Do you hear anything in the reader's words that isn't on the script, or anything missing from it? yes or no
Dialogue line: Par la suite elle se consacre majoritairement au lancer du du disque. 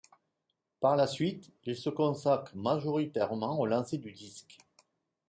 yes